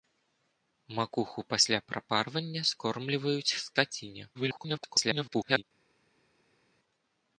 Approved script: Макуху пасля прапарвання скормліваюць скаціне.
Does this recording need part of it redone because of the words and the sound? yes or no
yes